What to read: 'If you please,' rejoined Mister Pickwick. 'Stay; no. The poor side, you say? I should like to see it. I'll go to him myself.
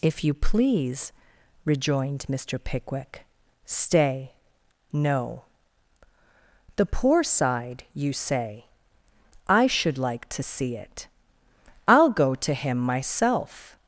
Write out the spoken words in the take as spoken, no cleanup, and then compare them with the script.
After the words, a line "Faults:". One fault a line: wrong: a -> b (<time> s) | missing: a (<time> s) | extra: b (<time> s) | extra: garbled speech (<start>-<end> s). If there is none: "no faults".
'If you please,' rejoined Mister Pickwick. 'Stay; no. The poor side, you say? I should like to see it. I'll go to him myself.
Faults:
no faults